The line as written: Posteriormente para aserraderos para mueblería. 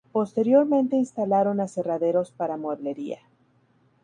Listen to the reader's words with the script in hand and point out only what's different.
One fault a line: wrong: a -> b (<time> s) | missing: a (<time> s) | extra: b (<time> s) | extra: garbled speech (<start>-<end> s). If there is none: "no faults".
wrong: para -> instalaron (0.9 s)